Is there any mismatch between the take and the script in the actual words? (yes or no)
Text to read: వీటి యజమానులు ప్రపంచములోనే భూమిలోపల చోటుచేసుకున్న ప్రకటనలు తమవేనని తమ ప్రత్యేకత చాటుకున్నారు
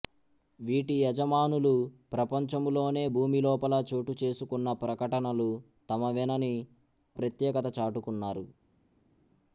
yes